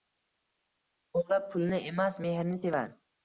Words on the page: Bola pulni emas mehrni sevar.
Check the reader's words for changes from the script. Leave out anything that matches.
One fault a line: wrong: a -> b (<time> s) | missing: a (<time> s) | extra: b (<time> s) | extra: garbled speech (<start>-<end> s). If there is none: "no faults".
no faults